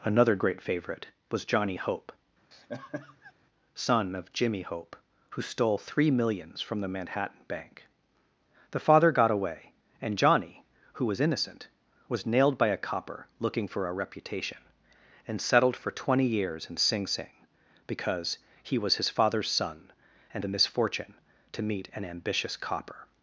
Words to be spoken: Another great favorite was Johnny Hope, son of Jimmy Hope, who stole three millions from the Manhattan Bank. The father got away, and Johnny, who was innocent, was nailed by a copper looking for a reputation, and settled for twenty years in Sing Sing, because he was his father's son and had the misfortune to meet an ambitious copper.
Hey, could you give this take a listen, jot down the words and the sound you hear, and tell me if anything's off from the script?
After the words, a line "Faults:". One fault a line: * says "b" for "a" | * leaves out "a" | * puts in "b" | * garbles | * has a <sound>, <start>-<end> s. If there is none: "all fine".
Another great favorite was Johnny Hope, son of Jimmy Hope, who stole three millions from the Manhattan Bank. The father got away, and Johnny, who was innocent, was nailed by a copper looking for a reputation, and settled for twenty years in Sing Sing, because he was his father's son and the misfortune to meet an ambitious copper.
Faults:
* has a laugh, 2.5-3.3 s
* leaves out "had"